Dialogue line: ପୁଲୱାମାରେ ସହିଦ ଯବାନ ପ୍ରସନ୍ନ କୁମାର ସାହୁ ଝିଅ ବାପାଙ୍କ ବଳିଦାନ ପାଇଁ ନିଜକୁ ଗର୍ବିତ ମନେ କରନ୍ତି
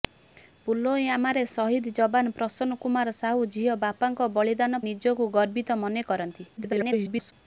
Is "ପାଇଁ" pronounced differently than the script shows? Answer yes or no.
yes